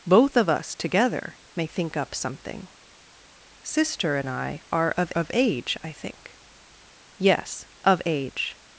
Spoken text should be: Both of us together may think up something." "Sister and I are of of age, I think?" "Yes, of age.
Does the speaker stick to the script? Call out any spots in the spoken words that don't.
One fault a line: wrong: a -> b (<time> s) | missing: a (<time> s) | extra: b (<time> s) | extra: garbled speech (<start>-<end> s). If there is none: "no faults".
no faults